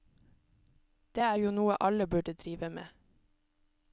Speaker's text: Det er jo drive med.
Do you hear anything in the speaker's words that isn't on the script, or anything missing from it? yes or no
yes